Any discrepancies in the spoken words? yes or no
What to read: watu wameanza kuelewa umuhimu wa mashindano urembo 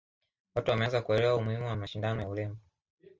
yes